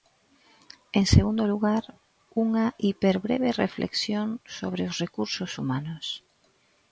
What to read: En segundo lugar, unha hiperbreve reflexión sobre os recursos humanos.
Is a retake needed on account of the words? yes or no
no